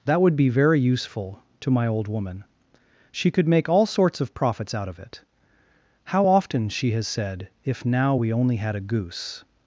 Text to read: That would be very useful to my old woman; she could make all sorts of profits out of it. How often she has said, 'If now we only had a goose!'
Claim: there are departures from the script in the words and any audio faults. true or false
false